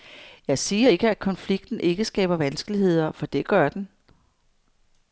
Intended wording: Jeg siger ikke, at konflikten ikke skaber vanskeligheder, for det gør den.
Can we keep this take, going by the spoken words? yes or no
yes